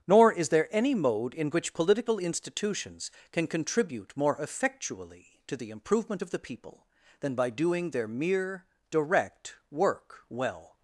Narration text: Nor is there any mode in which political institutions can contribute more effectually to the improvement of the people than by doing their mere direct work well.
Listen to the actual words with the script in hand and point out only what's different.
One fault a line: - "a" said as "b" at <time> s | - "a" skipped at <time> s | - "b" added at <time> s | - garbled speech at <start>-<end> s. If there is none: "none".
none